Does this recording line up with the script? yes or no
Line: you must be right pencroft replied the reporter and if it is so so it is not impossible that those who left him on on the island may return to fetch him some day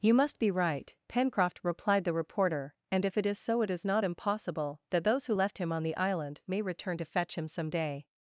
no